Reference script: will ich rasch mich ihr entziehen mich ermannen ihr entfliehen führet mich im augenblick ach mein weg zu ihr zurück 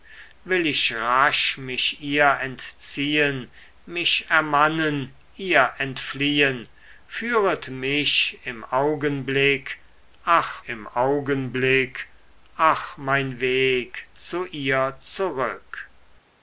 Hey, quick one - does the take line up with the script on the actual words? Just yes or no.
no